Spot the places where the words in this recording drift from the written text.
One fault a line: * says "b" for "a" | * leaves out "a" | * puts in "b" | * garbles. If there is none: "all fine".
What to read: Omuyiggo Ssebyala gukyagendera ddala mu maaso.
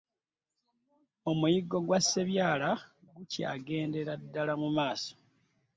* puts in "gwa"